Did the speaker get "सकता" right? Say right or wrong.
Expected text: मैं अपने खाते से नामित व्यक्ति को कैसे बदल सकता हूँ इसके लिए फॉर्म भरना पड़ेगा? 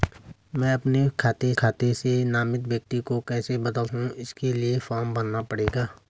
wrong